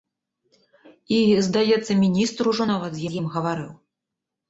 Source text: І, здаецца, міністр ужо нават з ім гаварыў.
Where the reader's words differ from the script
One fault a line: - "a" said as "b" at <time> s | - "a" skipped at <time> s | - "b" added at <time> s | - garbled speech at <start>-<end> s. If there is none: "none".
- "з" added at 3.1 s